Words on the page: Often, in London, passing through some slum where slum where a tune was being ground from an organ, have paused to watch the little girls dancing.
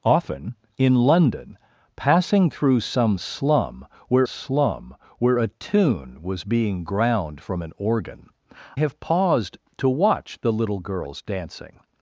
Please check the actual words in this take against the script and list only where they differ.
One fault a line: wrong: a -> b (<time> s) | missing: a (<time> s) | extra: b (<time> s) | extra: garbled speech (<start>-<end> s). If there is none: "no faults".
no faults